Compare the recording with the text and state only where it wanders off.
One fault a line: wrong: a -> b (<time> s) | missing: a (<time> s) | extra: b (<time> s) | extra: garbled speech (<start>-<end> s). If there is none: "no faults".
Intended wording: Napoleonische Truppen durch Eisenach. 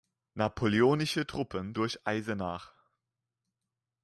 no faults